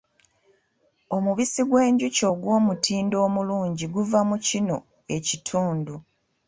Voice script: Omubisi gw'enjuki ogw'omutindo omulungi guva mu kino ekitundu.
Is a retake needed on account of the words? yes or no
no